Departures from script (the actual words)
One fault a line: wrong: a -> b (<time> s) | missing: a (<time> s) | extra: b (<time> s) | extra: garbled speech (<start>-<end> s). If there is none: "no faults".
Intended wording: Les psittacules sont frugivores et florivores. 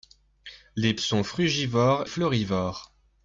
missing: psittacules (0.9 s)
missing: et (2.0 s)